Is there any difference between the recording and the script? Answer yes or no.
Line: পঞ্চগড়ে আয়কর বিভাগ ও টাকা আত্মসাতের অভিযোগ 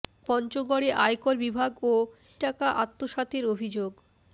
no